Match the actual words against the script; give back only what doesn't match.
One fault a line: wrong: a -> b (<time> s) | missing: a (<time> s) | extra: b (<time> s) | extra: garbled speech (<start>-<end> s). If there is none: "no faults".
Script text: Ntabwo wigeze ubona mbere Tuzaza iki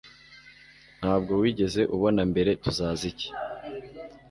no faults